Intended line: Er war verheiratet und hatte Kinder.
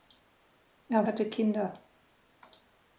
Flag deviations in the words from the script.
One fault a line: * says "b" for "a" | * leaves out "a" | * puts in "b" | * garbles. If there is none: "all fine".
* leaves out "war verheiratet und"